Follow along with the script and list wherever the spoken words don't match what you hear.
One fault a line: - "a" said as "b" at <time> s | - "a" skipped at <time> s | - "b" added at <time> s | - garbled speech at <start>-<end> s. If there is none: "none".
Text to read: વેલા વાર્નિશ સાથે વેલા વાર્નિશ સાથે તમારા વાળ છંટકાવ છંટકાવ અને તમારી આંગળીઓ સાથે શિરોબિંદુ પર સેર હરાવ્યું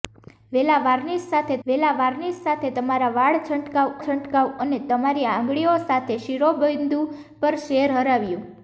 none